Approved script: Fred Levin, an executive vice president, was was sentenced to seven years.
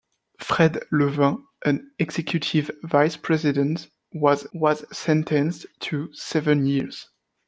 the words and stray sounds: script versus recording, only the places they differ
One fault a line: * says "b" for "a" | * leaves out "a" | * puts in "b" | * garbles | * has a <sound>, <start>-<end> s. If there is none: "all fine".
all fine